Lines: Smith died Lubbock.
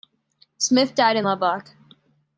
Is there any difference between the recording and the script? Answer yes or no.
yes